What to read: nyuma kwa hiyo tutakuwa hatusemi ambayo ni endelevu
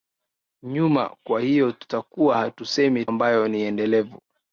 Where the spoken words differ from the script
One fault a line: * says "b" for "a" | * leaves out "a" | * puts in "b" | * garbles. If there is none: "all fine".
all fine